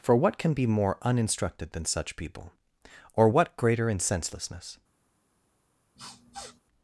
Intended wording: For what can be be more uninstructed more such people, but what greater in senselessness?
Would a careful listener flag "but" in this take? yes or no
yes